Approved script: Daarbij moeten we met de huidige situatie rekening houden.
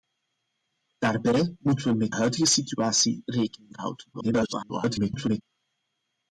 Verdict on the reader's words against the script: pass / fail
fail